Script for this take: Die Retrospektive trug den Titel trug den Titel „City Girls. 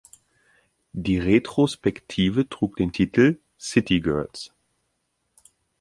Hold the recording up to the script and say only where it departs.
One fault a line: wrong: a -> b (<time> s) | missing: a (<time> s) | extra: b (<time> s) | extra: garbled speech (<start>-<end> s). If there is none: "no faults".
missing: trug den Titel (3.4 s)